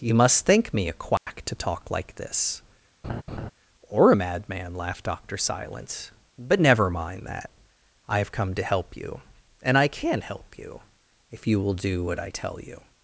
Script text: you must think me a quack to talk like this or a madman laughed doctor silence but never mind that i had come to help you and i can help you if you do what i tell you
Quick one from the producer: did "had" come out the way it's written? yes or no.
no